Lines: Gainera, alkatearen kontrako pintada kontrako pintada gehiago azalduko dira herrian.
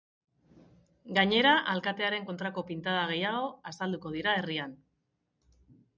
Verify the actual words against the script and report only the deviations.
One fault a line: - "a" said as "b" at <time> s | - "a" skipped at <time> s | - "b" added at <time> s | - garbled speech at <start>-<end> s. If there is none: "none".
- "kontrako pintada" skipped at 3.0 s